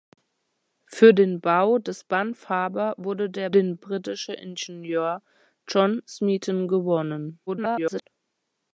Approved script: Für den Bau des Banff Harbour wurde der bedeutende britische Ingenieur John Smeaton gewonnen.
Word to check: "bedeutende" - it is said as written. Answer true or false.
false